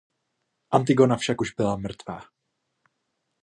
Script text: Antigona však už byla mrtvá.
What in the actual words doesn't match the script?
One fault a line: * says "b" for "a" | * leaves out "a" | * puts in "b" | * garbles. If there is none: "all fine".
all fine